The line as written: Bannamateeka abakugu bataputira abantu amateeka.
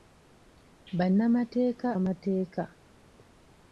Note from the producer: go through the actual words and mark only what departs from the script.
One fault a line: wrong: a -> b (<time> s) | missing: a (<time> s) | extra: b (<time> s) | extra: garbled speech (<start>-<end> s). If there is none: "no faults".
missing: abakugu bataputira abantu (1.9 s)